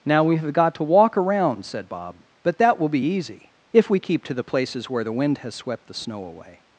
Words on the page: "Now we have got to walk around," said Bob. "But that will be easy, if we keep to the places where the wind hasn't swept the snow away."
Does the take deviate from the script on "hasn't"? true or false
true